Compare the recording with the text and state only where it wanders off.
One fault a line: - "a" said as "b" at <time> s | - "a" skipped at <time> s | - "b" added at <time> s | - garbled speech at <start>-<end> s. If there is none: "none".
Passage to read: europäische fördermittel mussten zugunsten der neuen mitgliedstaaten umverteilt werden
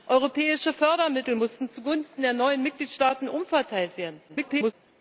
- garbled speech at 4.3-4.7 s